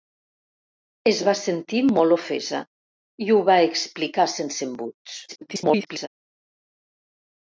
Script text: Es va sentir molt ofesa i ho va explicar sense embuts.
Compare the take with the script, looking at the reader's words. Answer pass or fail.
fail